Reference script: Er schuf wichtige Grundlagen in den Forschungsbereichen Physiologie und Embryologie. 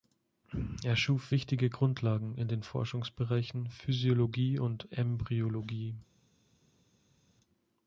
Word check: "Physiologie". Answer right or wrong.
right